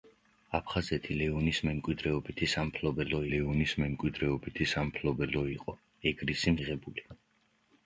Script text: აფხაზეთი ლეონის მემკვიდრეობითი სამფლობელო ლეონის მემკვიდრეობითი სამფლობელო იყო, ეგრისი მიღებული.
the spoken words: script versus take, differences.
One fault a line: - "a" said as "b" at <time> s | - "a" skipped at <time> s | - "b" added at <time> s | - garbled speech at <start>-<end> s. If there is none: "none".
none